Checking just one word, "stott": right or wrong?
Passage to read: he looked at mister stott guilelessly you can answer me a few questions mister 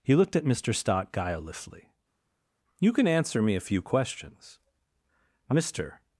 right